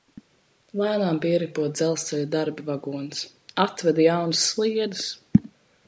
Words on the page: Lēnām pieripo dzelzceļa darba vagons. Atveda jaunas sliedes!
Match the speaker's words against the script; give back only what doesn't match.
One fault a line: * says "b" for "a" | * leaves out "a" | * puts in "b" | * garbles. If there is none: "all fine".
all fine